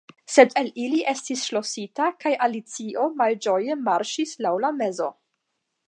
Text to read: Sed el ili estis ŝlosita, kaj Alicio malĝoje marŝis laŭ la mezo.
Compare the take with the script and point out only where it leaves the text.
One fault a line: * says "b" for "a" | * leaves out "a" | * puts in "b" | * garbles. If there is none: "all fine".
all fine